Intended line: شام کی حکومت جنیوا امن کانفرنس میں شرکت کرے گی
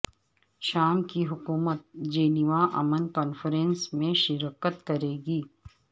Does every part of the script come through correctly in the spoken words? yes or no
yes